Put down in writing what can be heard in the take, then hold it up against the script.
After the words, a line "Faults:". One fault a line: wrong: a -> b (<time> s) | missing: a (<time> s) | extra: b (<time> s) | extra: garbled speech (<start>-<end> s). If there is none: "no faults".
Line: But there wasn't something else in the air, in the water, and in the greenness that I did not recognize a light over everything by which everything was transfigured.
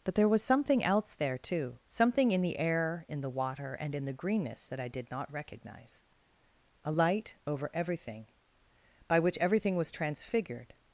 But there was something else there, too something in the air, in the water, and in the greenness that I did not recognize a light over everything by which everything was transfigured.
Faults:
wrong: wasn't -> was (0.3 s)
extra: there too something (1.1 s)